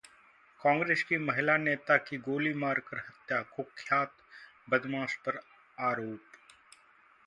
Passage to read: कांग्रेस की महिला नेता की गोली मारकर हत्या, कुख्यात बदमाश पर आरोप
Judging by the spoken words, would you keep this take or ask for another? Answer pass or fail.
pass